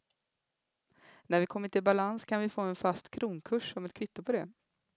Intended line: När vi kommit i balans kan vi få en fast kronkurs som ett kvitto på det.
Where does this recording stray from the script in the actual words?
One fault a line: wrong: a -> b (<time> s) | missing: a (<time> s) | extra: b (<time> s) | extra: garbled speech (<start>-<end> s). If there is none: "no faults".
no faults